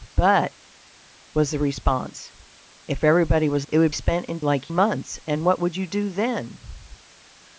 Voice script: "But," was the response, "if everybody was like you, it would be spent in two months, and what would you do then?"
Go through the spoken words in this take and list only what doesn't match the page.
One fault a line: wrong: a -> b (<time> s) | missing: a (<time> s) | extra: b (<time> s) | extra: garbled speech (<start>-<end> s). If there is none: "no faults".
missing: like you (3.7 s)
missing: be (3.9 s)
wrong: two -> like (4.4 s)